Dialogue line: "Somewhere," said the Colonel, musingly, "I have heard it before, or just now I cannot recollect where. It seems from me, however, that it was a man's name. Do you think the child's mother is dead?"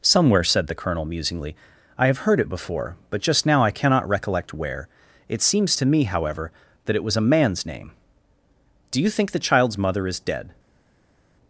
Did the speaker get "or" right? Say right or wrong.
wrong